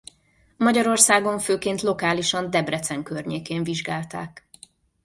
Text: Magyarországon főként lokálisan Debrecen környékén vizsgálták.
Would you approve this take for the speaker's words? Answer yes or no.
yes